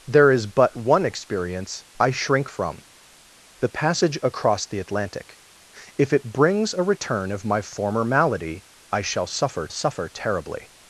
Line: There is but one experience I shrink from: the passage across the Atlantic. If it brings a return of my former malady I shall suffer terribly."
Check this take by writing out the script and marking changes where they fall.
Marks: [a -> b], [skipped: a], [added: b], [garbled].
There is but one experience I shrink from: the passage across the Atlantic. If it brings a return of my former malady I shall suffer [added: suffer] terribly."